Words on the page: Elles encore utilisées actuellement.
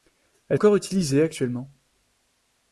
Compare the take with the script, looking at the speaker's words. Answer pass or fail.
pass